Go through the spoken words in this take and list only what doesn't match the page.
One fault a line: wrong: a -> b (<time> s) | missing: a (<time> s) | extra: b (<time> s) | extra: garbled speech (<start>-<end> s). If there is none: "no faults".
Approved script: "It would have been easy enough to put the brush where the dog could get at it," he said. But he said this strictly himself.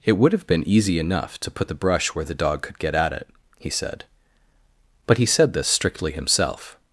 no faults